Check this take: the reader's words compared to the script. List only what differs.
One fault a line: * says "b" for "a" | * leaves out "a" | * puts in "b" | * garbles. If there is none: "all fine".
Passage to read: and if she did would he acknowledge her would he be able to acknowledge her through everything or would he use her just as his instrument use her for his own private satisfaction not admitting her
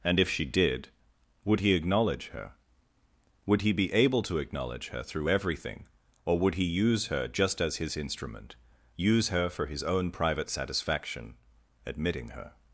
* leaves out "not"